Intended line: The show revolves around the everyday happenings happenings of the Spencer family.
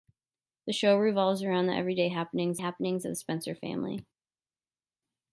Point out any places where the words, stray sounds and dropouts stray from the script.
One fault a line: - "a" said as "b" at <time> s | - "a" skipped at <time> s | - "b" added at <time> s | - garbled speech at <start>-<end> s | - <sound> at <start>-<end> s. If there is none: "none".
none